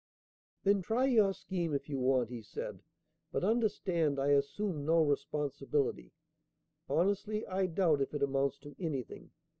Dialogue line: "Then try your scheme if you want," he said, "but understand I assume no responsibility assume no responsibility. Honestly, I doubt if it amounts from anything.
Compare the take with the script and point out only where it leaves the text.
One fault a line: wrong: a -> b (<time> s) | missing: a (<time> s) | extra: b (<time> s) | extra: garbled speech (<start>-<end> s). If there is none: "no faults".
missing: assume no responsibility (6.1 s)
wrong: from -> to (8.6 s)